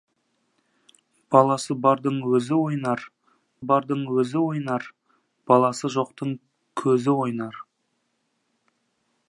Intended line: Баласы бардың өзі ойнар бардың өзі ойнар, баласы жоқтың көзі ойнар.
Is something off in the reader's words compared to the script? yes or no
no